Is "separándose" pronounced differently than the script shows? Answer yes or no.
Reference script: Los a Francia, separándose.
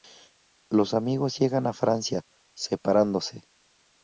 no